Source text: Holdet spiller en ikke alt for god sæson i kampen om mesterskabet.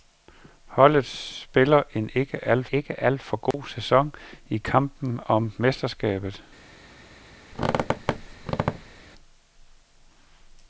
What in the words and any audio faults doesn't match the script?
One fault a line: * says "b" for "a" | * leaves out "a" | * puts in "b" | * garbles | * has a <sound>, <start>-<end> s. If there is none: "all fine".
* puts in "ikke alt"
* has a dropout, 3.5-3.5 s
* has a squeak, 7.5-9.0 s